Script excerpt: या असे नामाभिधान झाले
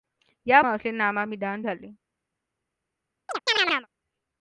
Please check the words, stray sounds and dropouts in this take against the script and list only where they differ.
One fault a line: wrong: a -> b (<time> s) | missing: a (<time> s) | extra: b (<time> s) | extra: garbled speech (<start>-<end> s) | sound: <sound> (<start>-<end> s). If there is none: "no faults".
sound: chirp (3.3-3.9 s)